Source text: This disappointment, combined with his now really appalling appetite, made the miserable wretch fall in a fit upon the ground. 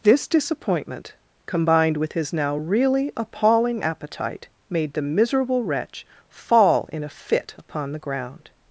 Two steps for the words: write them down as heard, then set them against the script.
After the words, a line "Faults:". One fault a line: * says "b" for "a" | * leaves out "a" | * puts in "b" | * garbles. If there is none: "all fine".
This disappointment, combined with his now really appalling appetite, made the miserable wretch fall in a fit upon the ground.
Faults:
all fine